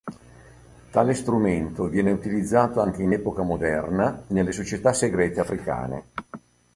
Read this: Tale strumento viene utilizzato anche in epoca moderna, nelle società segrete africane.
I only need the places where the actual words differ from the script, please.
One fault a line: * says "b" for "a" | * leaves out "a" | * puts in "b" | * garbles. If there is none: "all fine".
all fine